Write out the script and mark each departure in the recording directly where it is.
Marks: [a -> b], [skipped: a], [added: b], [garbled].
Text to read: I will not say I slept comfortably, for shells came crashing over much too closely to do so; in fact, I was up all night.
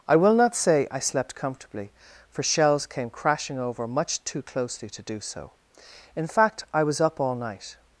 I will not say I slept comfortably, for shells came crashing over much too closely to do so; in fact, I was up all night.